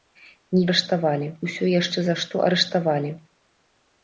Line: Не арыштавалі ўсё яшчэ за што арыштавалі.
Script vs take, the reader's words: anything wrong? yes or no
no